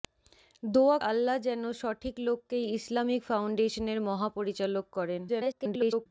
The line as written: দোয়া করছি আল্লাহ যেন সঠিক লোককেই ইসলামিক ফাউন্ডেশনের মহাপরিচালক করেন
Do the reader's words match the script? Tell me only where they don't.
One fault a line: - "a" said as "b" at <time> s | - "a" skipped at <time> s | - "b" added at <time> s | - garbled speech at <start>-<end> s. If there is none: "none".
- "করছি" skipped at 1.0 s
- garbled speech at 5.3-6.1 s